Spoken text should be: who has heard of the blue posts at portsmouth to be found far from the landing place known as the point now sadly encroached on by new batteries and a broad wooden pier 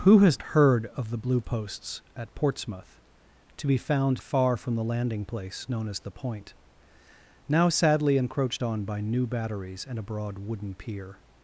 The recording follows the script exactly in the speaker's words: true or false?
true